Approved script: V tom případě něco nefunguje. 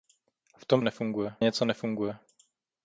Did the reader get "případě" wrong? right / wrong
wrong